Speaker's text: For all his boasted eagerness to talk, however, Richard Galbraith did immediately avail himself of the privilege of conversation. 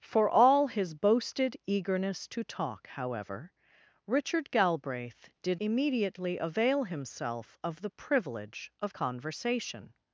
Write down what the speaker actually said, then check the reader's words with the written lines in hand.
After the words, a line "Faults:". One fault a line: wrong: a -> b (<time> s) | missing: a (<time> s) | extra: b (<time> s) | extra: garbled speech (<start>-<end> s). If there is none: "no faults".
For all his boasted eagerness to talk, however, Richard Galbraith did immediately avail himself of the privilege of conversation.
Faults:
no faults